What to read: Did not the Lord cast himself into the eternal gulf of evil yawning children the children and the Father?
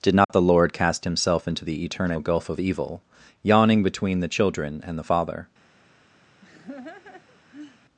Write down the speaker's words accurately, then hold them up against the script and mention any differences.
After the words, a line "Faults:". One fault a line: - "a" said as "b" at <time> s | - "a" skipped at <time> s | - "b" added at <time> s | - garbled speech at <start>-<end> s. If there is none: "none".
Did not the Lord cast himself into the eternal gulf of evil yawning between the children and the Father?
Faults:
- "children" said as "between" at 3.8 s